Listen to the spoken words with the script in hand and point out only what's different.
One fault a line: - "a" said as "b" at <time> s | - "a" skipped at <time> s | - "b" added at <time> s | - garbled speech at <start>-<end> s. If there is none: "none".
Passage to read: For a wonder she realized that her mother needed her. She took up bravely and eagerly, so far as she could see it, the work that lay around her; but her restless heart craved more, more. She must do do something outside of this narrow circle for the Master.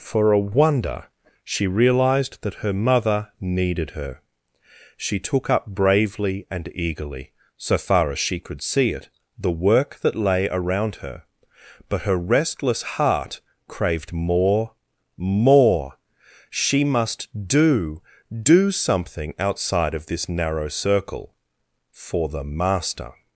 none